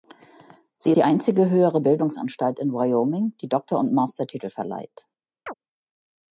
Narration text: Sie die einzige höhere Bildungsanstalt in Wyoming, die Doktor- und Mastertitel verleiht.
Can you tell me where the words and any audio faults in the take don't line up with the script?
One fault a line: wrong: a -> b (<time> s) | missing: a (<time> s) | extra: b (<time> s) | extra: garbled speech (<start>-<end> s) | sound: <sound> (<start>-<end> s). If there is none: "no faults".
sound: chirp (5.5-5.5 s)